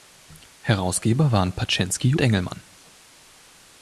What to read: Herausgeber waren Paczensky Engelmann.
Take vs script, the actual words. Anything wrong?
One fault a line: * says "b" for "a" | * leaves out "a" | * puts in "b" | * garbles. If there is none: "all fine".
all fine